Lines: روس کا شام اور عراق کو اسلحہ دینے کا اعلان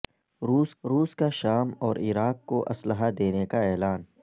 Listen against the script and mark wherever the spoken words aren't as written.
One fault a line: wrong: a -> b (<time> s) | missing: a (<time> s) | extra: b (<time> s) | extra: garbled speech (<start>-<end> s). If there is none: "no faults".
extra: روس (0.8 s)